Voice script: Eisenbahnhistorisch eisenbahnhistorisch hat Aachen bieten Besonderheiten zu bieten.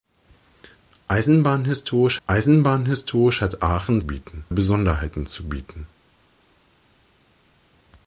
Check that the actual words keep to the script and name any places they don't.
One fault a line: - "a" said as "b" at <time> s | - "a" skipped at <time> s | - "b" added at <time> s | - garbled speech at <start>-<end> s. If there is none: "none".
none